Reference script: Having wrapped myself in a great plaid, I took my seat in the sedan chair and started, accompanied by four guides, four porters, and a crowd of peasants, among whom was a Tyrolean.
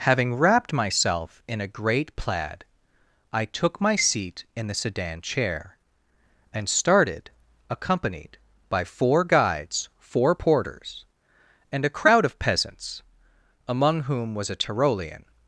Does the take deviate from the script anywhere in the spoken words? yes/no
no